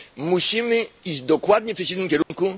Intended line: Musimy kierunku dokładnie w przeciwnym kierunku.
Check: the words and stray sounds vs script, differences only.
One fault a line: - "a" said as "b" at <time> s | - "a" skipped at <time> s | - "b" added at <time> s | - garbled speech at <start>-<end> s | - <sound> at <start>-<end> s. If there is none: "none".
- "kierunku" said as "iść" at 1.1 s
- dropout at 2.2-2.3 s